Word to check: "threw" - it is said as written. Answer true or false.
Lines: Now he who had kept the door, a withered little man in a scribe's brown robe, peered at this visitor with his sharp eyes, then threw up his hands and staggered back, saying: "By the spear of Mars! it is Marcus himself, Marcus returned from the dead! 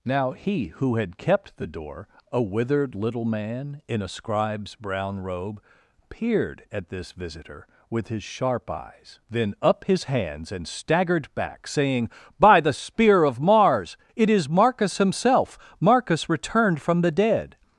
false